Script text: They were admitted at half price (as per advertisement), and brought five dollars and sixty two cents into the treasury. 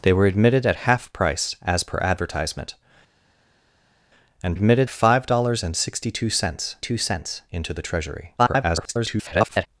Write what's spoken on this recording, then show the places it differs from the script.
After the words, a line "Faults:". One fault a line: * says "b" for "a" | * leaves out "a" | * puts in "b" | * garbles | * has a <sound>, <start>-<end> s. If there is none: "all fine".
They were admitted at half price (as per advertisement), and admitted five dollars and sixty two cents two cents into the treasury. [garbled]
Faults:
* says "admitted" for "brought"
* puts in "two cents"
* garbles